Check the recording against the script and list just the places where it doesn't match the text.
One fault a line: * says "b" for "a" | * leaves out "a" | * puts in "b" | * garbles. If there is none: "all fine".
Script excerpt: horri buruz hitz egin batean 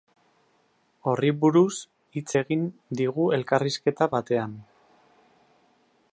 * puts in "digu elkarrizketa"